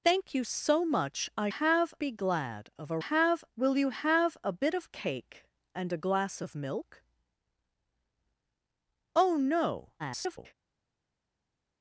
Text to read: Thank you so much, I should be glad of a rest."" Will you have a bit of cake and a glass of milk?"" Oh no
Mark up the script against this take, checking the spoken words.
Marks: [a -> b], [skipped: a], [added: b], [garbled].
Thank you so much, I [should -> have] be glad of a [rest."" -> have] Will you have a bit of cake and a glass of milk?"" Oh no [garbled]